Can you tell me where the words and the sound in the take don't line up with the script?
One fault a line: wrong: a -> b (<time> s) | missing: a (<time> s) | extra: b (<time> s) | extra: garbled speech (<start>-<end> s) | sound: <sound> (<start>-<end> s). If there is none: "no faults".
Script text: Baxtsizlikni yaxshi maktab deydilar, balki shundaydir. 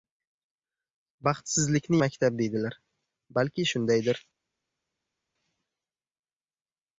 missing: yaxshi (2.0 s)